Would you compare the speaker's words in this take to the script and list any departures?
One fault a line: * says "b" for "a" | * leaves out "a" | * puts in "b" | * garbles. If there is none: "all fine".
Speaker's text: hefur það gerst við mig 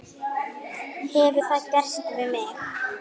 all fine